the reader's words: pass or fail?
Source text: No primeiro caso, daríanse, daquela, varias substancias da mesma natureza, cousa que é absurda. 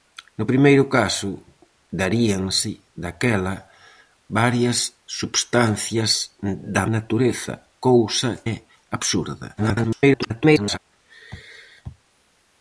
fail